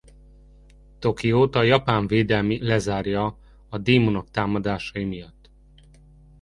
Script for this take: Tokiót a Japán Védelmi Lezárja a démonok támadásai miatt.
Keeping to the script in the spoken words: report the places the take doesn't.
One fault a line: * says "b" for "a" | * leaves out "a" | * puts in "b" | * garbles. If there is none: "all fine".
all fine